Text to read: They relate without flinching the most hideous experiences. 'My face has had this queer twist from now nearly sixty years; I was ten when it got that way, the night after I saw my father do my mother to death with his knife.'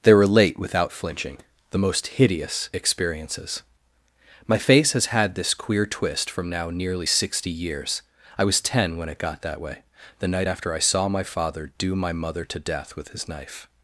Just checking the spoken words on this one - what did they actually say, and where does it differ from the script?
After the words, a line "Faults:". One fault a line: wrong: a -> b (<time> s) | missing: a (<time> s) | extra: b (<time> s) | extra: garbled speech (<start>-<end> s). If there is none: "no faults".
They relate without flinching the most hideous experiences. 'My face has had this queer twist from now nearly sixty years; I was ten when it got that way, the night after I saw my father do my mother to death with his knife.'
Faults:
no faults